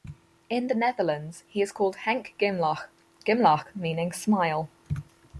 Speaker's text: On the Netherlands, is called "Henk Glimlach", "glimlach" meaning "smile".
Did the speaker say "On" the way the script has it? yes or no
no